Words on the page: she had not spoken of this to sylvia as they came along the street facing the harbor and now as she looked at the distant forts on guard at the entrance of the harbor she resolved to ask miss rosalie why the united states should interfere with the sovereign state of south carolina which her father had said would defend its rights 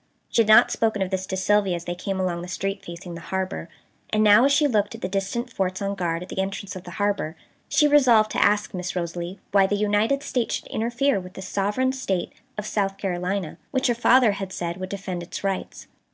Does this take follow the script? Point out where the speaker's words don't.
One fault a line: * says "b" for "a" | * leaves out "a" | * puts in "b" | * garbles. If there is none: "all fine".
all fine